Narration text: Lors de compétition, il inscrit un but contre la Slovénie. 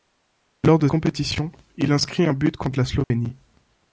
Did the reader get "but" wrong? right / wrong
right